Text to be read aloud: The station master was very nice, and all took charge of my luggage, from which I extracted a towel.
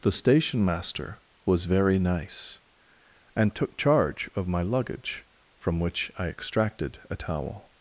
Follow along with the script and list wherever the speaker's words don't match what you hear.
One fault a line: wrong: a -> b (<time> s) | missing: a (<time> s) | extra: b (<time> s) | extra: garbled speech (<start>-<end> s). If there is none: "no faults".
missing: all (3.5 s)